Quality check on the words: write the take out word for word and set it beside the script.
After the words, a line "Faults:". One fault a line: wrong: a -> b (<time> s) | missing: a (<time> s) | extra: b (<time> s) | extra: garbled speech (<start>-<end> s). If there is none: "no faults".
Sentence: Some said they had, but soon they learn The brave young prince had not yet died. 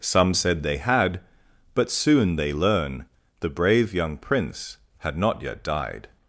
Some said they had, but soon they learn The brave young prince had not yet died.
Faults:
no faults